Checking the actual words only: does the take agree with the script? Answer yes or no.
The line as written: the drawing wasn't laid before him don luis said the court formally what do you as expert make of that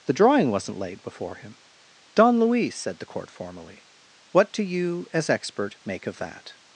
yes